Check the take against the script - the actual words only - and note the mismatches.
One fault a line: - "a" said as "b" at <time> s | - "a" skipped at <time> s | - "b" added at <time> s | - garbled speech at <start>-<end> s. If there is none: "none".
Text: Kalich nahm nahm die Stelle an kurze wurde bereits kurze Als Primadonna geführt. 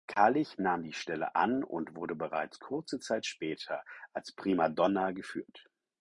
- "nahm" skipped at 0.8 s
- "kurze" said as "und" at 1.6 s
- "Zeit später" added at 3.0 s